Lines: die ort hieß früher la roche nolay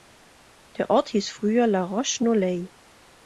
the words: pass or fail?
fail